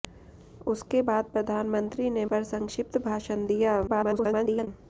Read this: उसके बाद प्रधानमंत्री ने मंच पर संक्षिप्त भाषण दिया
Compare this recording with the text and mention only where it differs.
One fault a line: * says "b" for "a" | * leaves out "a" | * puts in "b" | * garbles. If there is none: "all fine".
* leaves out "मंच"
* garbles